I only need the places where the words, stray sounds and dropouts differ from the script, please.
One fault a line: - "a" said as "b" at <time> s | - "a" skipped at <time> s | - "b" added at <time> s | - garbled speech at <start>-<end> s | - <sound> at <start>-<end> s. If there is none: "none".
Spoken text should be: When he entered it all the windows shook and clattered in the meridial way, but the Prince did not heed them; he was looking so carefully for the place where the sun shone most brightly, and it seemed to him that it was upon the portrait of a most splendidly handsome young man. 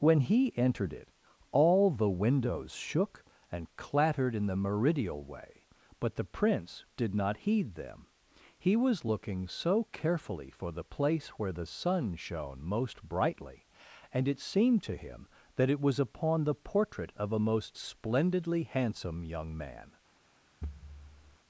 - thud at 20.6-21.4 s